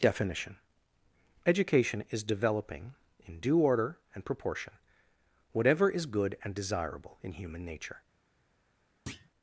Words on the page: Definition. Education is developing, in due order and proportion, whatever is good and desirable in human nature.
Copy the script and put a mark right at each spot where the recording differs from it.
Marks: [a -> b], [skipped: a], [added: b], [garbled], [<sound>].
Definition. Education is developing, in due order and proportion, whatever is good and desirable in human nature. [thud]